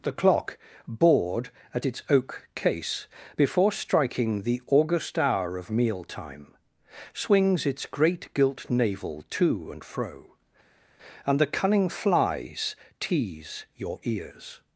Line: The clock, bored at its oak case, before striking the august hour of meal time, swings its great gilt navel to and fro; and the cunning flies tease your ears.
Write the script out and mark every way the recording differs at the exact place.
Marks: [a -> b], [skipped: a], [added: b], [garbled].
The clock, bored at its oak case, before striking the august hour of meal time, swings its great gilt navel to and fro; and the cunning flies tease your ears.